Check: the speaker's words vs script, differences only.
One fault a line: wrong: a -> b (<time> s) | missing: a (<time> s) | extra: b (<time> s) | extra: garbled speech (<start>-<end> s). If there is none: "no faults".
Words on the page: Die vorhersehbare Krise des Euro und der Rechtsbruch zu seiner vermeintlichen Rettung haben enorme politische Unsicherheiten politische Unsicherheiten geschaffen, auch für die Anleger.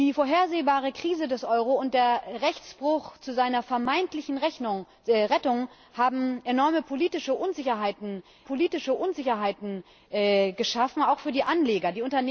no faults